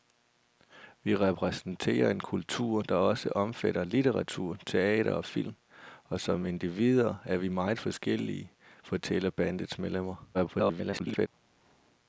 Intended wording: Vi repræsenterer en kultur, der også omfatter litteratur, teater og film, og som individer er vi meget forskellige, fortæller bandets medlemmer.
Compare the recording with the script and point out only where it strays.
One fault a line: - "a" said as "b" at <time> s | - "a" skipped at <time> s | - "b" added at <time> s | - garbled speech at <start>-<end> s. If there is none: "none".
- garbled speech at 10.3-11.3 s